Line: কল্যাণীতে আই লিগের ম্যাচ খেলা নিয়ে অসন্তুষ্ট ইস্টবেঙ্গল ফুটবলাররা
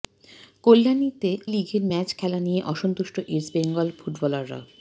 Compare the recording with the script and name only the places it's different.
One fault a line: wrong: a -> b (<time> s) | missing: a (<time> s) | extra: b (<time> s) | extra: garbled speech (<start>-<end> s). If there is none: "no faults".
missing: আই (1.3 s)